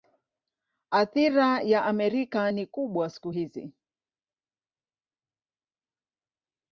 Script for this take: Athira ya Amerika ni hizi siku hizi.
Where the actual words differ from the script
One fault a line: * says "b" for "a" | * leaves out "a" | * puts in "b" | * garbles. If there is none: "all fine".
* says "kubwa" for "hizi"